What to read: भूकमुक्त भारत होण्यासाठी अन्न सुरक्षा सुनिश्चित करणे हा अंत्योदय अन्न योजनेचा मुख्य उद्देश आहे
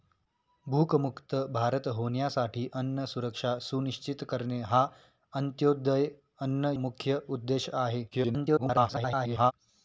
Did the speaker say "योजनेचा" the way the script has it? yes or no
no